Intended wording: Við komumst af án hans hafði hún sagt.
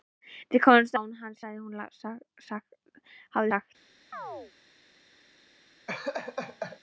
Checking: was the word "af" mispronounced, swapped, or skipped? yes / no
yes